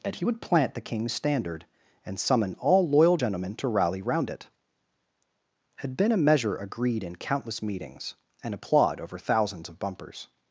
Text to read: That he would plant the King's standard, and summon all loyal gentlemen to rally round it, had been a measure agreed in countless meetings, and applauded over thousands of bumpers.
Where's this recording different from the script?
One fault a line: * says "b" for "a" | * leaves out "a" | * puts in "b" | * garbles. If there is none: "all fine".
* says "applaud" for "applauded"